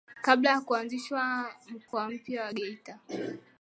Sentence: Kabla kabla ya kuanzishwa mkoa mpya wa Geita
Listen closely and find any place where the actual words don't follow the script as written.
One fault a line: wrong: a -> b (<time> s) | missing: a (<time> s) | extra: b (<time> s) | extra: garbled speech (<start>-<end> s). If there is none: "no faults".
missing: kabla (0.5 s)